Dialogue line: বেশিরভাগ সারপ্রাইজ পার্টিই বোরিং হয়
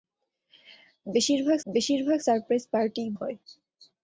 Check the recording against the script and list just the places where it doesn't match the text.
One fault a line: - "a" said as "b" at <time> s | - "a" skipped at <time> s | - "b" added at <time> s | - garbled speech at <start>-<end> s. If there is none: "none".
- "বেশিরভাগ" added at 1.6 s
- "বোরিং" skipped at 3.1 s